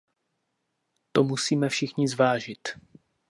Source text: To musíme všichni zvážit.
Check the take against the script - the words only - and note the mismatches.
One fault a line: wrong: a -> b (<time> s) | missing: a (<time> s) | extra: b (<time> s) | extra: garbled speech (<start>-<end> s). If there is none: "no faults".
no faults